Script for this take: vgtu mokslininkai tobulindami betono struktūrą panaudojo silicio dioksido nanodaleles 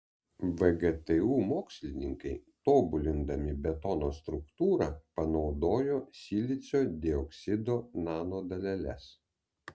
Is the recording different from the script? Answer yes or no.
no